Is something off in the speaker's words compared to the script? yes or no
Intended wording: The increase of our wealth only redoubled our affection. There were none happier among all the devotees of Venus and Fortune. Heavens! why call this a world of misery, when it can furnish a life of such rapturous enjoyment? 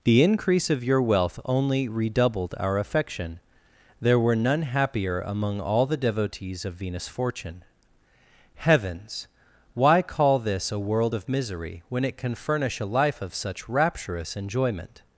yes